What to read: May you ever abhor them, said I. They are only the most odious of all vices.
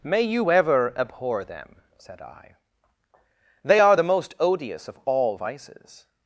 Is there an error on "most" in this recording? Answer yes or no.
no